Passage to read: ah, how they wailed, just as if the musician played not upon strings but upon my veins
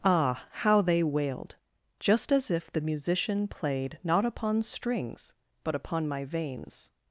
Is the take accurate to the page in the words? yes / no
yes